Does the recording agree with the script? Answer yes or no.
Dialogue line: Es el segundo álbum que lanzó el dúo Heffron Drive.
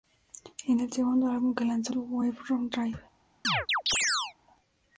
no